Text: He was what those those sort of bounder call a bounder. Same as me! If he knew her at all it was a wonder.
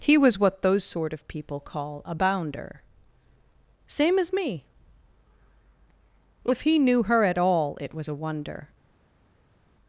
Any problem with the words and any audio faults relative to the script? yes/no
yes